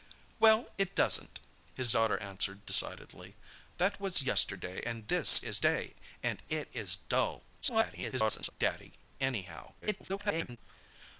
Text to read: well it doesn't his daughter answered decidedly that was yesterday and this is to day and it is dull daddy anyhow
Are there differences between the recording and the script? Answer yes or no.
yes